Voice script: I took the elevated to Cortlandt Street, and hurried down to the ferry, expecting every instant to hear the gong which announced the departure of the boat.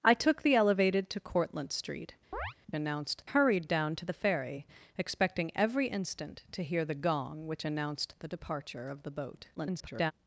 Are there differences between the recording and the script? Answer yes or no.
yes